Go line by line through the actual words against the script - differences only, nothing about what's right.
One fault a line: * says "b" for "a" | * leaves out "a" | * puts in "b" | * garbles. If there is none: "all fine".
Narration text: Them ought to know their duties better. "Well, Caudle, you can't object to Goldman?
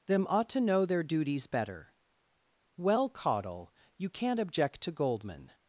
all fine